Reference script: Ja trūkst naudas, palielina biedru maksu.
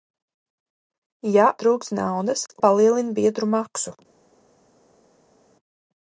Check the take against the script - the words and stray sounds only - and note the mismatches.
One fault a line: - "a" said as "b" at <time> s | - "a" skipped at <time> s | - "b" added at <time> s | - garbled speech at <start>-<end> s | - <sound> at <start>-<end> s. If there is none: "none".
none